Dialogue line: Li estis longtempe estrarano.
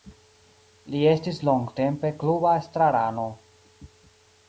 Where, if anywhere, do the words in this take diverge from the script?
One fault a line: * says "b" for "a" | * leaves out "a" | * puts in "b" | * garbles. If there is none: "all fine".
* puts in "kluba"